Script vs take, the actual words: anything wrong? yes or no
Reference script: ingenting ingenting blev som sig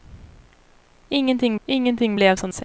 no